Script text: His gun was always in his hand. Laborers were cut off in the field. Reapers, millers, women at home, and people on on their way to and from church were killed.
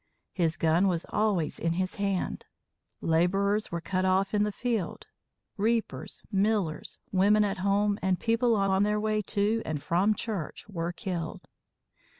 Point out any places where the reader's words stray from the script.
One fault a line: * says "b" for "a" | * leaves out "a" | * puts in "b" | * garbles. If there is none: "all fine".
all fine